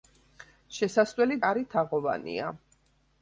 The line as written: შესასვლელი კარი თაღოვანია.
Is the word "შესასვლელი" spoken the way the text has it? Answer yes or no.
yes